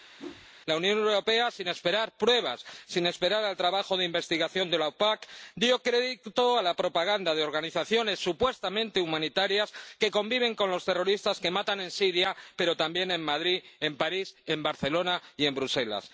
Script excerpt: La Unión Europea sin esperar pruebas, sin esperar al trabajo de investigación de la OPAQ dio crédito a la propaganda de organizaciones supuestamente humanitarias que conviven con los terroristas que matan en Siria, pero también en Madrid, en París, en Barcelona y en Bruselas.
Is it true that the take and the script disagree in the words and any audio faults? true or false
true